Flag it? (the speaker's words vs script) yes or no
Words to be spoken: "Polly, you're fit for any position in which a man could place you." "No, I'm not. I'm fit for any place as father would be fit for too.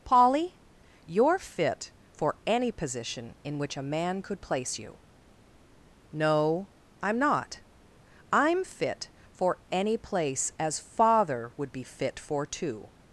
no